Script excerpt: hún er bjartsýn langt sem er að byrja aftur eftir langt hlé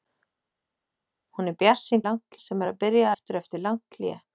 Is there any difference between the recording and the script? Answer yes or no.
no